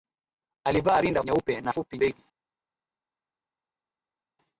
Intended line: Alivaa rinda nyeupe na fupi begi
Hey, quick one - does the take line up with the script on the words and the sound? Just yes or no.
yes